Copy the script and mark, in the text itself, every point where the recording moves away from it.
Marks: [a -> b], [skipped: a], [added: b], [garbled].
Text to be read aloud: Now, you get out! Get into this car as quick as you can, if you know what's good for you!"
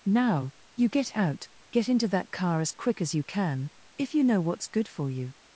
Now, you get out! Get into [this -> that] car as quick as you can, if you know what's good for you!"